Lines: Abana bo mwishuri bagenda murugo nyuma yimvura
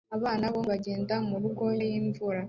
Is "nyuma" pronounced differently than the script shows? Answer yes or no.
yes